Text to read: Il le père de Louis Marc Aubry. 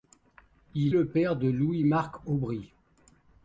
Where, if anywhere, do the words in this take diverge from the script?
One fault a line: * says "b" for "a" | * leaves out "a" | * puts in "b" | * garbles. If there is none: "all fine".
all fine